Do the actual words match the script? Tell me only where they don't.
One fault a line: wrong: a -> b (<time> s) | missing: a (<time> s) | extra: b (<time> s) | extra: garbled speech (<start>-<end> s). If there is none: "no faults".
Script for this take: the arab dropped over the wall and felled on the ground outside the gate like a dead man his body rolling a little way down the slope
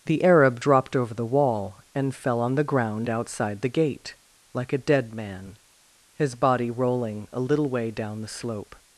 wrong: felled -> fell (2.1 s)